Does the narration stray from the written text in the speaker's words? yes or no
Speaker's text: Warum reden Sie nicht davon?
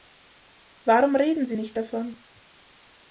no